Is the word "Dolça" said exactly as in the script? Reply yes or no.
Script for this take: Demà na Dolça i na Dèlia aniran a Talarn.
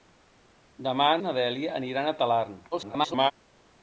no